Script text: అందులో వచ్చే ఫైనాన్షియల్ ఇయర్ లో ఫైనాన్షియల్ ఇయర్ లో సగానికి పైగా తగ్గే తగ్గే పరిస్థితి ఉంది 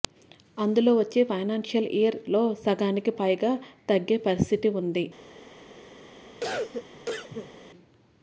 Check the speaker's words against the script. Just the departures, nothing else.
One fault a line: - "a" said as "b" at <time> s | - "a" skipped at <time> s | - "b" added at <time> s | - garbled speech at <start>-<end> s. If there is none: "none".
- "ఫైనాన్షియల్ ఇయర్ లో" skipped at 2.4 s
- "తగ్గే" skipped at 4.2 s